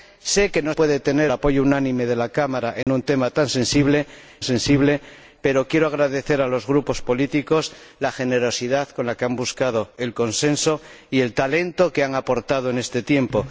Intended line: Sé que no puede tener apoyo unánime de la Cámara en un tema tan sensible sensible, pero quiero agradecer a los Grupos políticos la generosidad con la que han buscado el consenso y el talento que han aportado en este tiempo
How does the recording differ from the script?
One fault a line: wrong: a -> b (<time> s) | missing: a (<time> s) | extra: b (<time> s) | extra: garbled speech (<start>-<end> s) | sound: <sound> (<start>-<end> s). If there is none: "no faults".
sound: dropout (2.8-2.9 s)